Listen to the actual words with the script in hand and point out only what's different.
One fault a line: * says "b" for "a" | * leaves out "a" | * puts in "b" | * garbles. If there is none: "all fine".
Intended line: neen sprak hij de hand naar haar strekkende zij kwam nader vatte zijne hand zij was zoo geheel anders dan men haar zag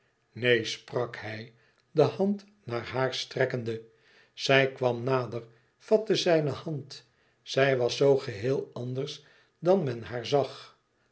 all fine